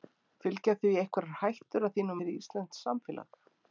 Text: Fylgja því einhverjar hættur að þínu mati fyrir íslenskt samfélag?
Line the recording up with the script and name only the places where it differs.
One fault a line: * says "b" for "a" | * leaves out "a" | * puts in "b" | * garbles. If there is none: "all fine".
* leaves out "mati"